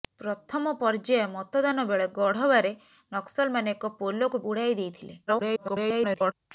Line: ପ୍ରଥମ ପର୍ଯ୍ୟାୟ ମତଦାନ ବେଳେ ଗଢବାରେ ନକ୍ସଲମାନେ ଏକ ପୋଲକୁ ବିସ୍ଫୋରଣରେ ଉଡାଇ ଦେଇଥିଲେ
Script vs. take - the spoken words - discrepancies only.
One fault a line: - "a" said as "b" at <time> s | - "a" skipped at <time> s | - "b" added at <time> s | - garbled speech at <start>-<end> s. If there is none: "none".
- "ବିସ୍ଫୋରଣରେ" skipped at 4.4 s
- garbled speech at 5.3-6.3 s